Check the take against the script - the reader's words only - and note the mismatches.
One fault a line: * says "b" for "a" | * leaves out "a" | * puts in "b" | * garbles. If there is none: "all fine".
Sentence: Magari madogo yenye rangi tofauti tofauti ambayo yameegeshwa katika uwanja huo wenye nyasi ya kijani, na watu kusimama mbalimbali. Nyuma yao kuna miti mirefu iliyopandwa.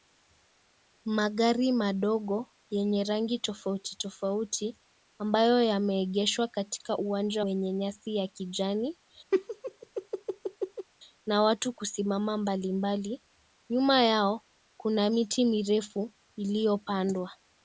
* leaves out "huo"